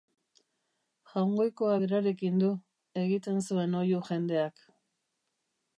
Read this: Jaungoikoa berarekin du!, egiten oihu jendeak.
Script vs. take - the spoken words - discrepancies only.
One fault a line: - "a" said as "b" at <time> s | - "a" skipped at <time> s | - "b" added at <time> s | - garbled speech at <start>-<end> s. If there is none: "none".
- "zuen" added at 3.5 s